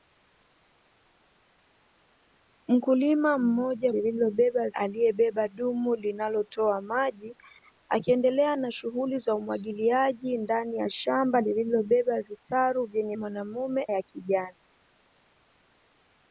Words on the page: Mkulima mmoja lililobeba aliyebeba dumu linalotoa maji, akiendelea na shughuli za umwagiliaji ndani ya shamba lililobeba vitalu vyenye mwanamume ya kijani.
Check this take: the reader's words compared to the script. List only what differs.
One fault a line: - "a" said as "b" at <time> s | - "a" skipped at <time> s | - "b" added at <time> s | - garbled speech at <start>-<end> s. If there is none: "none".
none